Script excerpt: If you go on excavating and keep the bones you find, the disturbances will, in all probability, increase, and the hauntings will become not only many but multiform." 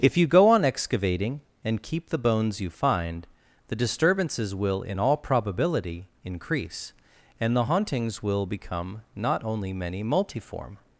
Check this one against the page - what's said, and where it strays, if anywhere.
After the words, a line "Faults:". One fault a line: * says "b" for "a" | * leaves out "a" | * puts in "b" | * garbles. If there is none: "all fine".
If you go on excavating and keep the bones you find, the disturbances will, in all probability, increase, and the hauntings will become not only many multiform."
Faults:
* leaves out "but"